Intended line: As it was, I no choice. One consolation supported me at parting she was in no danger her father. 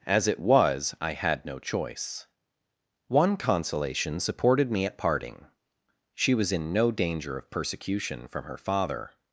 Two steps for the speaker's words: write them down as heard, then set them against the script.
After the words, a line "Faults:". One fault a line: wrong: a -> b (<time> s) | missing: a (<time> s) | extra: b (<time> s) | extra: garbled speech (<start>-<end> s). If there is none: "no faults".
As it was, I had no choice. One consolation supported me at parting she was in no danger of persecution from her father.
Faults:
extra: had (1.1 s)
extra: of persecution from (7.4 s)